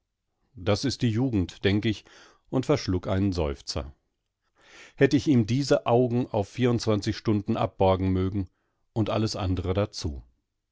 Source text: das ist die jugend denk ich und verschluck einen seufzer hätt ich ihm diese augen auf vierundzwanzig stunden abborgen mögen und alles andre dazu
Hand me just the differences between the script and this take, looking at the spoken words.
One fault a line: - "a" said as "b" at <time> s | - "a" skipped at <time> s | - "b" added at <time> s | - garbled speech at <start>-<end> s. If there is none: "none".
none